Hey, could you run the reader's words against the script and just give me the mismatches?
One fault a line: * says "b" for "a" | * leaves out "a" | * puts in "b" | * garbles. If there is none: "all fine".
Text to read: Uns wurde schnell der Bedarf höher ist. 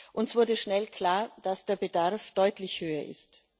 * puts in "klar dass"
* puts in "deutlich"